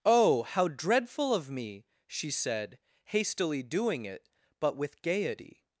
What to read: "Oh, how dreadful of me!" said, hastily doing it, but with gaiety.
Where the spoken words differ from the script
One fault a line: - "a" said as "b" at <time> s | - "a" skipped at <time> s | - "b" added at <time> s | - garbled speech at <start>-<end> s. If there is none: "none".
- "she" added at 2.1 s